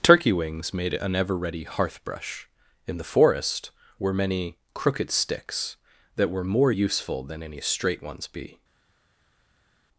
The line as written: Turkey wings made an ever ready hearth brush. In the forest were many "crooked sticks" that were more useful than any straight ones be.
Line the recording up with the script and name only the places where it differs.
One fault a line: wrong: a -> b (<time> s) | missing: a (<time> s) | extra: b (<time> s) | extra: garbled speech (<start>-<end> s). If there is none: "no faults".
no faults